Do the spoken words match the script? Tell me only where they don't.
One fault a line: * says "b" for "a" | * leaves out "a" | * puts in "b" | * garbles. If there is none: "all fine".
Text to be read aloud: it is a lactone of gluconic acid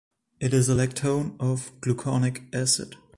all fine